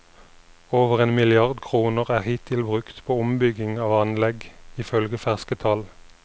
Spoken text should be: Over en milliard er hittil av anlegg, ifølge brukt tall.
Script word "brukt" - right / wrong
wrong